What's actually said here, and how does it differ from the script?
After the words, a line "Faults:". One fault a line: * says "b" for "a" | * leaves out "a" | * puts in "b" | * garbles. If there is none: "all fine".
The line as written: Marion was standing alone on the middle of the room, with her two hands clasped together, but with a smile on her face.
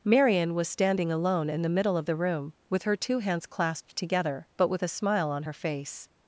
Marion was standing alone in the middle of the room, with her two hands clasped together, but with a smile on her face.
Faults:
* says "in" for "on"